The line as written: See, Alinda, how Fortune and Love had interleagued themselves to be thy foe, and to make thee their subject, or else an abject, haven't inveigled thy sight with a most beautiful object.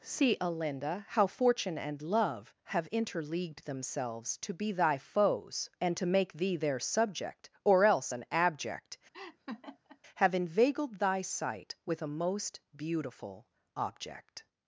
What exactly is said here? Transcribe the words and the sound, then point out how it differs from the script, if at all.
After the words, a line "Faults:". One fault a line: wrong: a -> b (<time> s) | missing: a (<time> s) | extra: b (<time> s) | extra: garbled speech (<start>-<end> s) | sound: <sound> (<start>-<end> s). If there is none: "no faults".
See, Alinda, how Fortune and Love have interleagued themselves to be thy foes, and to make thee their subject, or else an abject, have inveigled thy sight with a most beautiful object.
Faults:
wrong: had -> have (2.6 s)
wrong: foe -> foes (5.0 s)
sound: laugh (9.1-10.0 s)
wrong: haven't -> have (10.2 s)